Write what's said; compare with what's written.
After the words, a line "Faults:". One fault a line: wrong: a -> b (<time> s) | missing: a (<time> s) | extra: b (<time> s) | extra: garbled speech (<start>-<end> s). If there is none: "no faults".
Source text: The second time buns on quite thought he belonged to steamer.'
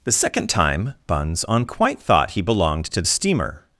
The second time buns on quite thought he belonged to steamer.'
Faults:
no faults